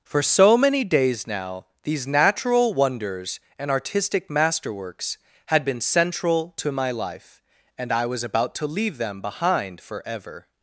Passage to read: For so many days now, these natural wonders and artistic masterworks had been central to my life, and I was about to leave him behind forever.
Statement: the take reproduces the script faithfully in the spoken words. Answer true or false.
false